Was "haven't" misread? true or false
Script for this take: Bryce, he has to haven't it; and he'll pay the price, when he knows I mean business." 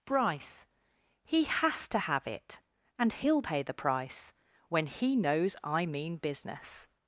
true